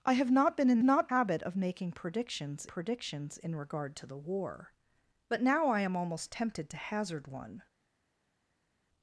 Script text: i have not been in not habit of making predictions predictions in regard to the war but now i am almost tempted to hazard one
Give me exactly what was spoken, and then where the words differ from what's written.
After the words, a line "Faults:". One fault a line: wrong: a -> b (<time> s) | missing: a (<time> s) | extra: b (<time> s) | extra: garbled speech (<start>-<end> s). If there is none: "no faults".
i have not been in not habit of making predictions predictions in regard to the war but now i am almost tempted to hazard one
Faults:
no faults